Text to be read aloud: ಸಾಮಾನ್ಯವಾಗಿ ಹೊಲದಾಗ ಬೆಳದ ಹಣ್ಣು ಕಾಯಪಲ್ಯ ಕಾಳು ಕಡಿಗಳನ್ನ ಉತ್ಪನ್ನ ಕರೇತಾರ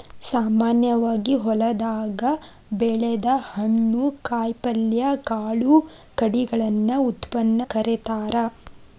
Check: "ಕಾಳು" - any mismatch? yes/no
no